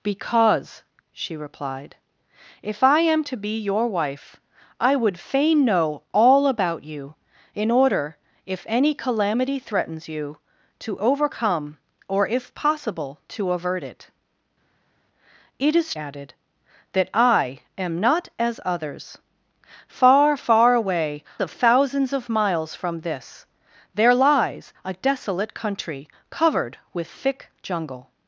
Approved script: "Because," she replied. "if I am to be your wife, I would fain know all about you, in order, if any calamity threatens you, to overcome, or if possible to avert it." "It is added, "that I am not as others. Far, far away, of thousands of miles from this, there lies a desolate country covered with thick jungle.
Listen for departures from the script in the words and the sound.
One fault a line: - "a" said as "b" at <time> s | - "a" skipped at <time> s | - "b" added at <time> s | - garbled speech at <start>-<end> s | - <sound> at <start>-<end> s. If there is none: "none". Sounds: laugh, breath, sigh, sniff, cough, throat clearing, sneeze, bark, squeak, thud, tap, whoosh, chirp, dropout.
none